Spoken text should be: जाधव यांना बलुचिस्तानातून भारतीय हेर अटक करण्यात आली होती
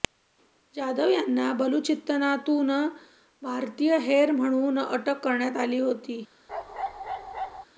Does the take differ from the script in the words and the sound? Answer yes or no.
yes